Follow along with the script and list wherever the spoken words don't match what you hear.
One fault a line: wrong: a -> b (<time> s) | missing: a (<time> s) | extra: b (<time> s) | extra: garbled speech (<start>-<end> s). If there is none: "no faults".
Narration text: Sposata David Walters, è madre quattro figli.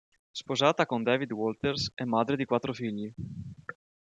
extra: con (0.9 s)
extra: di (2.4 s)